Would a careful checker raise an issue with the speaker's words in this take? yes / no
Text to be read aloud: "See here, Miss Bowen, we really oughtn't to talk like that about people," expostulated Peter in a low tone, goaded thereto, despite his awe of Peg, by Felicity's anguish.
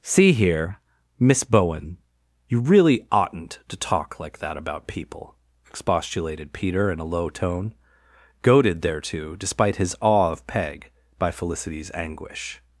yes